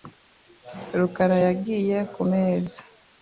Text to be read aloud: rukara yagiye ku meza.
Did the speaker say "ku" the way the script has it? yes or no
yes